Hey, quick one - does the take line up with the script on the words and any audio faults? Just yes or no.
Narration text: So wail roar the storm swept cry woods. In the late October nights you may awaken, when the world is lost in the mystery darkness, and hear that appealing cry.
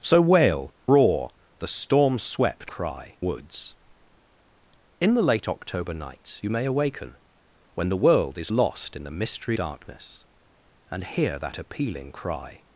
yes